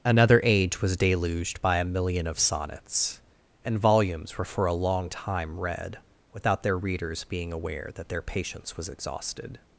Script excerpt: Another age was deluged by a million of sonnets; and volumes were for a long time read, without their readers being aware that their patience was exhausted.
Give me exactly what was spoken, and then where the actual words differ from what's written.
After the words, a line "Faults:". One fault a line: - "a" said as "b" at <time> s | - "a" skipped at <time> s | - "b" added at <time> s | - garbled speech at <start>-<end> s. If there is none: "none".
Another age was deluged by a million of sonnets; and volumes were for a long time read, without their readers being aware that their patience was exhausted.
Faults:
none